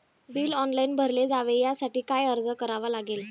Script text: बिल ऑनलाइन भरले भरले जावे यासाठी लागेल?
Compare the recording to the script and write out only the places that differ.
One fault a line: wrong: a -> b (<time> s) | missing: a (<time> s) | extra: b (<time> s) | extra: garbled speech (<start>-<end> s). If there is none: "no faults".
missing: भरले (1.3 s)
extra: काय अर्ज करावा (2.1 s)